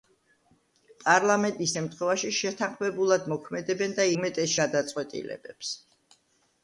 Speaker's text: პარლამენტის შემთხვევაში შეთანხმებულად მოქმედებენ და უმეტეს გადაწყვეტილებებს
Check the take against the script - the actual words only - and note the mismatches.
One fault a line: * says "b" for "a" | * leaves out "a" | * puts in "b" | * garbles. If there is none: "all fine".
all fine